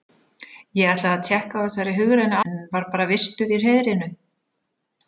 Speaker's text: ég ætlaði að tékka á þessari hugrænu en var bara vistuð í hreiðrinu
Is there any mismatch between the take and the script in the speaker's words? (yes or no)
no